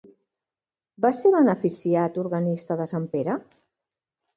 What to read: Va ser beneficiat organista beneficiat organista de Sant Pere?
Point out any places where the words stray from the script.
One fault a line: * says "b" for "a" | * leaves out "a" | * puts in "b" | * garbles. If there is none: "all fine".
* leaves out "beneficiat organista"